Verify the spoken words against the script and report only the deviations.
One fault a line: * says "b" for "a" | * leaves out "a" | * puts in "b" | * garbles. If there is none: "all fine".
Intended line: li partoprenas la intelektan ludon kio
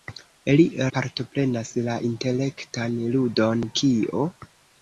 all fine